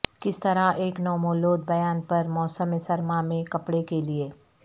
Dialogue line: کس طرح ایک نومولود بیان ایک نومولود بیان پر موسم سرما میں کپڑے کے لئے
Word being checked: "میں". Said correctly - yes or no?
yes